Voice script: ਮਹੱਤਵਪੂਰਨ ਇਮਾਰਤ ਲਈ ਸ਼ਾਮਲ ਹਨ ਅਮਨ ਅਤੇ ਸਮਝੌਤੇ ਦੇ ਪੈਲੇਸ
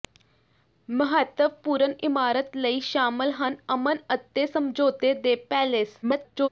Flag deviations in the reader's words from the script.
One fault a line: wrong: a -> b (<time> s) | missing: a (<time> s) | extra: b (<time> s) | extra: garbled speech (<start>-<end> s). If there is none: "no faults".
extra: garbled speech (6.0-6.5 s)